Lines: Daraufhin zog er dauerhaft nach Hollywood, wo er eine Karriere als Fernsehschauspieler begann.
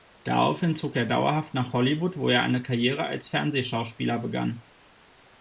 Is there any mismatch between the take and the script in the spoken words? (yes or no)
no